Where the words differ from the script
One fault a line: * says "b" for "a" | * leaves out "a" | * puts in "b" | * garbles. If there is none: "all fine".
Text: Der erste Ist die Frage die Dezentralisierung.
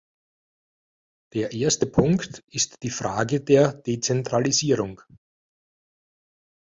* puts in "Punkt"
* says "der" for "die"